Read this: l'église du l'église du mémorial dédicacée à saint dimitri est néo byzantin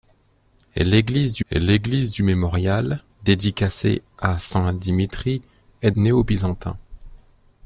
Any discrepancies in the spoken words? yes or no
no